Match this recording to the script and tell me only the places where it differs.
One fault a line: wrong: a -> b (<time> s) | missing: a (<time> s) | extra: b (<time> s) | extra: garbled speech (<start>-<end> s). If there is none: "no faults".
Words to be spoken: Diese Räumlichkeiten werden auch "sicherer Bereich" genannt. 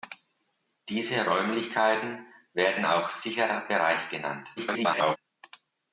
extra: garbled speech (4.6-5.2 s)